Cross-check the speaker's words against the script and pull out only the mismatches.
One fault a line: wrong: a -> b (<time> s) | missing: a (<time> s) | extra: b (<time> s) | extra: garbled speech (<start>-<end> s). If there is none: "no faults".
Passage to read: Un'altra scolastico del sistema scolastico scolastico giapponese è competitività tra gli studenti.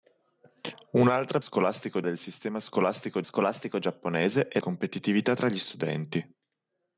no faults